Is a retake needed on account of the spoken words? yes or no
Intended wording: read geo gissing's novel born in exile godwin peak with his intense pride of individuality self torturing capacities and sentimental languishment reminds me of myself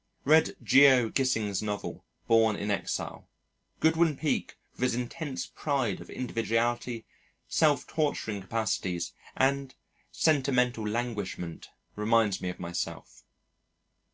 no